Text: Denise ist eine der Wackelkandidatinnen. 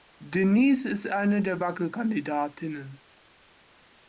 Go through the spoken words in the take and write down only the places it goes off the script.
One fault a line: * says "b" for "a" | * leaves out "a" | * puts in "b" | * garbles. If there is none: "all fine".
all fine